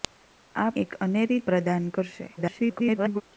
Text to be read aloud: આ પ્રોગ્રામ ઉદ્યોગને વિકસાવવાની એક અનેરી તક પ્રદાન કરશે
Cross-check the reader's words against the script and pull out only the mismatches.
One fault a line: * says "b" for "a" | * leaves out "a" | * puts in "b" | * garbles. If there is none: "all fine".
* leaves out "પ્રોગ્રામ ઉદ્યોગને વિકસાવવાની"
* leaves out "તક"
* garbles